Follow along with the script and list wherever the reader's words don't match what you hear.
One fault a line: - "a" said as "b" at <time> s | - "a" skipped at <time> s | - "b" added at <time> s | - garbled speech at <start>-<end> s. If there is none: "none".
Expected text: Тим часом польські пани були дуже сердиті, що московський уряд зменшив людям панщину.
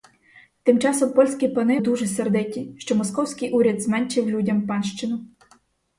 - "були" skipped at 1.8 s